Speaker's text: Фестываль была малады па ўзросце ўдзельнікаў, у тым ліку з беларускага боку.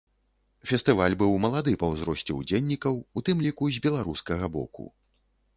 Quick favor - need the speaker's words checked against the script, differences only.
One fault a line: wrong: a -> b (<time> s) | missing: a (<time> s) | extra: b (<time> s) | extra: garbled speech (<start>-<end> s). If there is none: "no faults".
wrong: была -> быў (1.2 s)